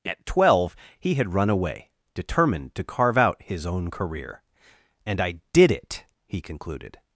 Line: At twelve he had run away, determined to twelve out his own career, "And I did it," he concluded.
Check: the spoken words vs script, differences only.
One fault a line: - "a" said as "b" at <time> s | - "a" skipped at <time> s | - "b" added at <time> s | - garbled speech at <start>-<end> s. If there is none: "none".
- "twelve" said as "carve" at 2.8 s